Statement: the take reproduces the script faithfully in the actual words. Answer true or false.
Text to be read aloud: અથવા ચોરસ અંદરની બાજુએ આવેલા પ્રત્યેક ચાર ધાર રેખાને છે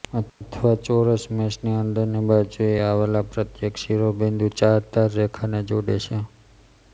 false